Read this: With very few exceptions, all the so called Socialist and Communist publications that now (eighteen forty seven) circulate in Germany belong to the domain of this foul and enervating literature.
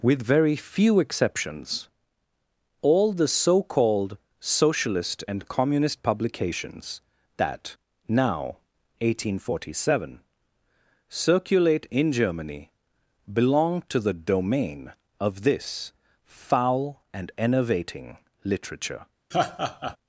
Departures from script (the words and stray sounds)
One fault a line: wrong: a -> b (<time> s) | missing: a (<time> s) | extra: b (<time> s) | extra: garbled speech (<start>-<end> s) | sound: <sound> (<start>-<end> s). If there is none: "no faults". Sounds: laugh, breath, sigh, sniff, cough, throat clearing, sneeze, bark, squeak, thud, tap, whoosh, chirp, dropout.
sound: laugh (19.3-20.0 s)